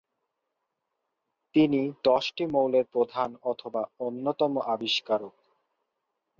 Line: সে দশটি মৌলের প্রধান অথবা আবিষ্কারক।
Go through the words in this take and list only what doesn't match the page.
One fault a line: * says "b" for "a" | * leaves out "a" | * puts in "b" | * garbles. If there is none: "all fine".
* says "তিনি" for "সে"
* puts in "অন্যতম"